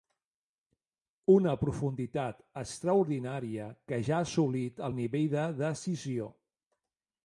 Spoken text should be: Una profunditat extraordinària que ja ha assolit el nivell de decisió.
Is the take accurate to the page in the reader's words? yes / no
yes